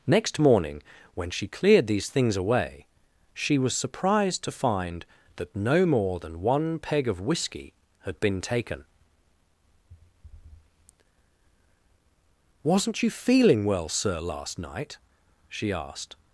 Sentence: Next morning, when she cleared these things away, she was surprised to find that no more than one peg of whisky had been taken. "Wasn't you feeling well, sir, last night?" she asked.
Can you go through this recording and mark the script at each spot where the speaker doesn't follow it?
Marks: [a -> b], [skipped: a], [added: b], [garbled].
Next morning, when she cleared these things away, she was surprised to find that no more than one peg of whisky had been taken. "Wasn't you feeling well, sir, last night?" she asked.